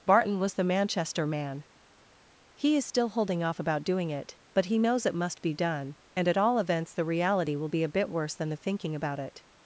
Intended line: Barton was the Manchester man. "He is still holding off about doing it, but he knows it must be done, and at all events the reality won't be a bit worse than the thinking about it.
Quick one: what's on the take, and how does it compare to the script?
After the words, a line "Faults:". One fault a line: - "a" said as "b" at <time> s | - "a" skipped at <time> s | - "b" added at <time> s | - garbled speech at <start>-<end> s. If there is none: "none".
Barton was the Manchester man. "He is still holding off about doing it, but he knows it must be done, and at all events the reality will be a bit worse than the thinking about it.
Faults:
- "won't" said as "will" at 7.5 s